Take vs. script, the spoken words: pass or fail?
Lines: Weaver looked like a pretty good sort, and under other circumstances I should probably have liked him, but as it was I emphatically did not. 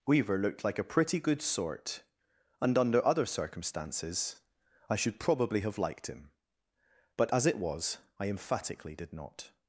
pass